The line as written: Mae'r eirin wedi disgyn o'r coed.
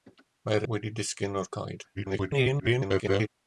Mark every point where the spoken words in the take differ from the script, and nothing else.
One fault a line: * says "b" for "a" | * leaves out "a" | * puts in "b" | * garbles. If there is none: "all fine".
* leaves out "eirin"
* garbles